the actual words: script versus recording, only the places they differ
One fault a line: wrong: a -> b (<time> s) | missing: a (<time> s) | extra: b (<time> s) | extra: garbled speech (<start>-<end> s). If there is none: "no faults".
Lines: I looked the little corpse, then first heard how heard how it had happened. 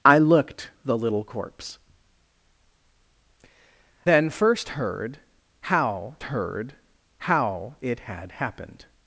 no faults